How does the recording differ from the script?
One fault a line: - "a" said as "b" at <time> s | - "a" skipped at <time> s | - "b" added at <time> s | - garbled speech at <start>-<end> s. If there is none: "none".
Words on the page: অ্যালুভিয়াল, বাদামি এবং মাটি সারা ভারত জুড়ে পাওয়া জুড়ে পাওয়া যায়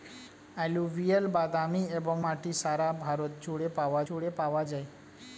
none